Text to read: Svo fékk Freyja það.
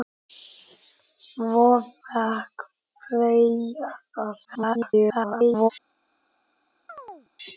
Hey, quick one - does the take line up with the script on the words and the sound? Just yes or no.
no